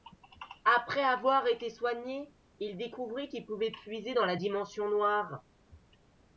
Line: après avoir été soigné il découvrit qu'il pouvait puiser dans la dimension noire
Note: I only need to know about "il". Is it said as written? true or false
true